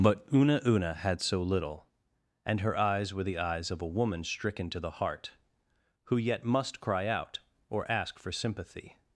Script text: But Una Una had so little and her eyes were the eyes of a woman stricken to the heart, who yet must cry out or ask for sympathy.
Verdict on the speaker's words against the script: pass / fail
pass